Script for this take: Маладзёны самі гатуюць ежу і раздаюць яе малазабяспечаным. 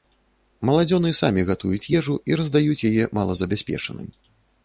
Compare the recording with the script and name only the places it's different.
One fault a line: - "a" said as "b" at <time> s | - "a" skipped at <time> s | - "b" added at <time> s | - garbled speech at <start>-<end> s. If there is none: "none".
none